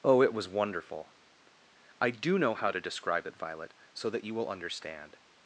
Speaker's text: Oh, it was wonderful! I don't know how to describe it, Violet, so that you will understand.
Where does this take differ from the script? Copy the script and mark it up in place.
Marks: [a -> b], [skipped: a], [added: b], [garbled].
Oh, it was wonderful! I [don't -> do] know how to describe it, Violet, so that you will understand.